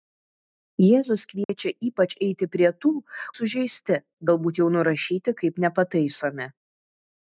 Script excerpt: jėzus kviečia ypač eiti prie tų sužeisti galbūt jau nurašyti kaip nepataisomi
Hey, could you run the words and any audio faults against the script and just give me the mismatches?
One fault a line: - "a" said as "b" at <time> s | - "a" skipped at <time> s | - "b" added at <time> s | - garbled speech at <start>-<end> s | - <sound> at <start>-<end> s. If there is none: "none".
- dropout at 1.4-1.5 s